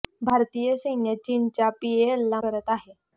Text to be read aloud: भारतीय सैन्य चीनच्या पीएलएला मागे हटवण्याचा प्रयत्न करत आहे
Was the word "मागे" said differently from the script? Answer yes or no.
yes